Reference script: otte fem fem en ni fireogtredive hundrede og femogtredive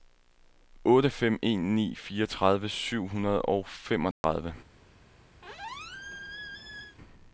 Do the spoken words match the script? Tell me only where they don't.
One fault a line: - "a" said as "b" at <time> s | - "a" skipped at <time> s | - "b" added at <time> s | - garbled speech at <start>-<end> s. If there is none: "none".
- "fem" skipped at 1.4 s
- "syv" added at 2.7 s